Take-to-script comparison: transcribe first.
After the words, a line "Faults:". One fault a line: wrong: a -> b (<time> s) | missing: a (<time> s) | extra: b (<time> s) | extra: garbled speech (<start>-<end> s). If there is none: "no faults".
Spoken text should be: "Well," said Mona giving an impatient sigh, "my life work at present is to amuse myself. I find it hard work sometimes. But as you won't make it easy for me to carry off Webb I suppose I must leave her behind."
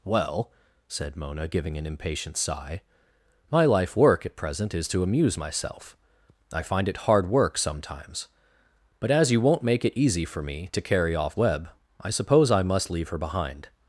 "Well," said Mona giving an impatient sigh, "my life work at present is to amuse myself. I find it hard work sometimes. But as you won't make it easy for me to carry off Webb I suppose I must leave her behind."
Faults:
no faults